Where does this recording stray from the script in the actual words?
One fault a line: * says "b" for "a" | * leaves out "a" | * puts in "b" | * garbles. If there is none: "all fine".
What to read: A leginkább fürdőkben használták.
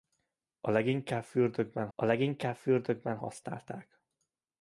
* puts in "a leginkább fürdőkben"